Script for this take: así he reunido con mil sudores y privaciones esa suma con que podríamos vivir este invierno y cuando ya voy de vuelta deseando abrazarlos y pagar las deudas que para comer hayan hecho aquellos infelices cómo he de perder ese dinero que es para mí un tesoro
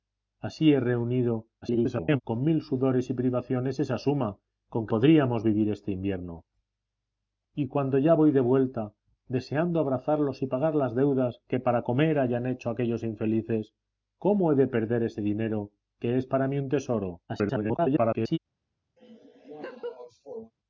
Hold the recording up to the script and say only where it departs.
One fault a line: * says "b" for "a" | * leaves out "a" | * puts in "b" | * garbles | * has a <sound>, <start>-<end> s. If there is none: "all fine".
* garbles
* leaves out "que"
* garbles
* has a laugh, 19.0-20.5 s